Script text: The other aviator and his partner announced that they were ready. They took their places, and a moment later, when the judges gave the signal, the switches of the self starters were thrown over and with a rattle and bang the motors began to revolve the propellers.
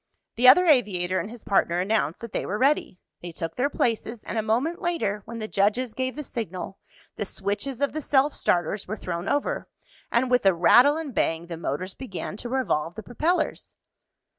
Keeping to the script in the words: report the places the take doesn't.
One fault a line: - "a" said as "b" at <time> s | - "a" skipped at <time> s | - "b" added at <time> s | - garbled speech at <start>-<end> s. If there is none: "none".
none